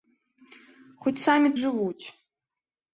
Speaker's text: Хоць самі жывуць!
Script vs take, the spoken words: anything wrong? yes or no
no